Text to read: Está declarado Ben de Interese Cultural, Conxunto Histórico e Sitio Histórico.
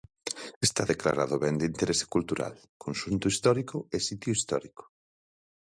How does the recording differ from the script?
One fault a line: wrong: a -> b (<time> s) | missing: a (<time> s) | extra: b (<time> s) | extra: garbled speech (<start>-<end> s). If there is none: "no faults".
no faults